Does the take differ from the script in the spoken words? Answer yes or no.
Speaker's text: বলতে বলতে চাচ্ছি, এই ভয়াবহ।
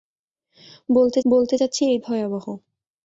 no